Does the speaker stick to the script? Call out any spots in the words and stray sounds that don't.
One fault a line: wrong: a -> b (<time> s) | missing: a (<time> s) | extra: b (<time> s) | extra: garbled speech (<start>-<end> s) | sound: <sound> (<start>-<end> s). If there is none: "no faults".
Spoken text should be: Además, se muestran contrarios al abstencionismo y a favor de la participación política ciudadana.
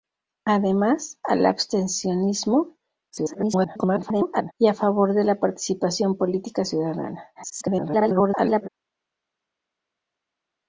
missing: se muestran contrarios (1.2 s)
extra: garbled speech (3.1-4.5 s)
extra: garbled speech (7.3-8.7 s)